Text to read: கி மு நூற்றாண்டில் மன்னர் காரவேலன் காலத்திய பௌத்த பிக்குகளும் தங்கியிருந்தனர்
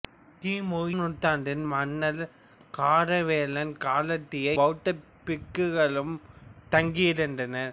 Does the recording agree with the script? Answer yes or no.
yes